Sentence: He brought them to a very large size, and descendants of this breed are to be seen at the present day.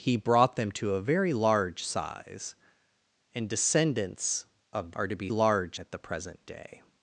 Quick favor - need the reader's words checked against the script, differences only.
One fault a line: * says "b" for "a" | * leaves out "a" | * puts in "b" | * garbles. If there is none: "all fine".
* leaves out "this breed"
* says "large" for "seen"